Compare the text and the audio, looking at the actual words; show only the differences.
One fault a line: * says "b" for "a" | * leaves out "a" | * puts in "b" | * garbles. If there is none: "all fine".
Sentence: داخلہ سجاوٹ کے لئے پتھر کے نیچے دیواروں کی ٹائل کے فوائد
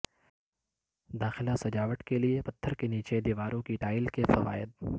all fine